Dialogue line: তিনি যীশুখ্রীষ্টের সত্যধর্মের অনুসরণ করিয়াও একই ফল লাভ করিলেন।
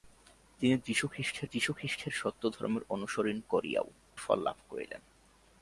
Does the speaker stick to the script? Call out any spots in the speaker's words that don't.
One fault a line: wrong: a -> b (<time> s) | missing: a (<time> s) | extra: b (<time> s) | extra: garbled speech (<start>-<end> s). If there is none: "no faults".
extra: যীশুখ্রীষ্টের (1.4 s)
missing: একই (3.9 s)